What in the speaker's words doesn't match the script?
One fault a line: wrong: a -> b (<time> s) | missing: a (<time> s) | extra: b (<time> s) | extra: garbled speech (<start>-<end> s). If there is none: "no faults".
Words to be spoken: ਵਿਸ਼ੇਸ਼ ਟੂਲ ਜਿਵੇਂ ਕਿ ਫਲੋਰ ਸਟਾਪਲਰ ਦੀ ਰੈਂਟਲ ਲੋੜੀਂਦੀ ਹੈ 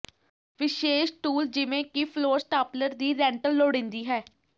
no faults